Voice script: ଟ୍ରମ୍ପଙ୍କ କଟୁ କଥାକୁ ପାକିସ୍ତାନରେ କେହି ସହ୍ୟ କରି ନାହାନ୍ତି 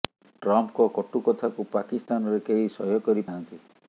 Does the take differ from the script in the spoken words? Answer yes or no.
no